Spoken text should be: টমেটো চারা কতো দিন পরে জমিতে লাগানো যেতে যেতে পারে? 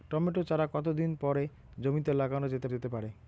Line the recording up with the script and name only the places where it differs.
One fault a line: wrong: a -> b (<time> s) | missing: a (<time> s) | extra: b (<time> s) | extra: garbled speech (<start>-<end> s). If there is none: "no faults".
no faults